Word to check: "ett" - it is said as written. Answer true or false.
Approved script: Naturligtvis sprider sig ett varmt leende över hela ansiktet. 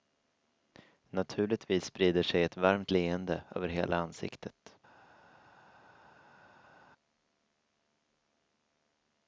true